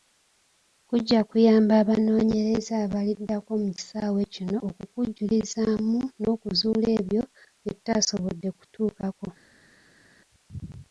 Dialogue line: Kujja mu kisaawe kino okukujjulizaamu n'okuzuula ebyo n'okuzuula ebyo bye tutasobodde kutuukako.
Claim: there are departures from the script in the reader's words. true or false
true